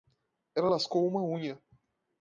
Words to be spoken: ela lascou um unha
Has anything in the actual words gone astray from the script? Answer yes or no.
yes